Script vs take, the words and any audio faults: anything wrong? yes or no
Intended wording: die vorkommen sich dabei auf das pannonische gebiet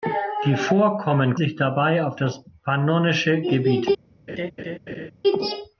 yes